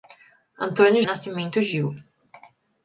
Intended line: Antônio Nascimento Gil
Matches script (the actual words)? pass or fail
pass